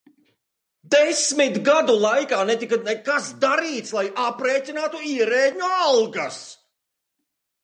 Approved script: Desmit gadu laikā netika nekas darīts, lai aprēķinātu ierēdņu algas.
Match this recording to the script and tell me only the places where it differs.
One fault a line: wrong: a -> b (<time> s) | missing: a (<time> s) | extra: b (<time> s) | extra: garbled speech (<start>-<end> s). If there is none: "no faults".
no faults